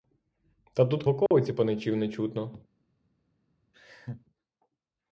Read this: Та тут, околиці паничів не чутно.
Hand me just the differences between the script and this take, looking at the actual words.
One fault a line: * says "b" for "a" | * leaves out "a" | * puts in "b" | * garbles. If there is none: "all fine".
all fine